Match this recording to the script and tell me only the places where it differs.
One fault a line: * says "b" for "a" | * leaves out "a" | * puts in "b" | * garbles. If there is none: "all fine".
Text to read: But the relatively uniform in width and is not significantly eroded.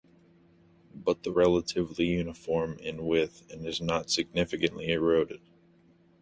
all fine